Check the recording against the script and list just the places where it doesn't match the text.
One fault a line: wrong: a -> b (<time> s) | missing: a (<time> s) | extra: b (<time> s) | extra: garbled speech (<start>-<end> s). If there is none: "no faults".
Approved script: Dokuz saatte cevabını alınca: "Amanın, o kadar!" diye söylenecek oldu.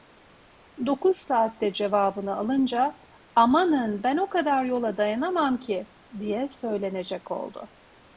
extra: ben (4.0 s)
extra: yola dayanamam ki (4.7 s)